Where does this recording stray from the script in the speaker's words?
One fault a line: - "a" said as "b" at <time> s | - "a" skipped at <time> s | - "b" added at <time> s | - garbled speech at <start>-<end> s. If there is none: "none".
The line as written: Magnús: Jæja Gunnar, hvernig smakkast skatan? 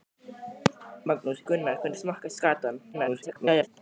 - "Jæja" skipped at 1.4 s
- garbled speech at 2.9-3.7 s